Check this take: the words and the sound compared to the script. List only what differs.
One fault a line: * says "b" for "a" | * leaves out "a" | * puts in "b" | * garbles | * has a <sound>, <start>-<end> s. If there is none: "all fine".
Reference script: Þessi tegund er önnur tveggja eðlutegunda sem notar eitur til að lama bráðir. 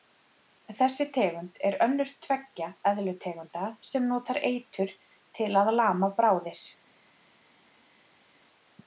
all fine